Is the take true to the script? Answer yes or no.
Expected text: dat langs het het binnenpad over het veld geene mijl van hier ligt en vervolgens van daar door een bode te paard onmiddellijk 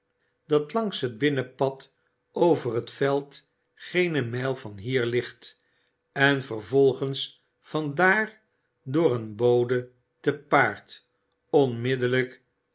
no